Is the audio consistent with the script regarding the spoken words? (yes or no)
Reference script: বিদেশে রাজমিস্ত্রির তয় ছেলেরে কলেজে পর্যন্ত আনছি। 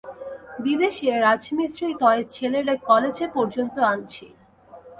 yes